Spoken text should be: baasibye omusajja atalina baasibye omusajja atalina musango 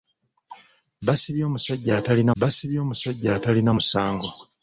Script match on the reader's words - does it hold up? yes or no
yes